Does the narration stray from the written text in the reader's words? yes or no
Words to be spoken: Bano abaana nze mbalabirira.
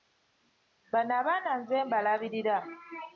no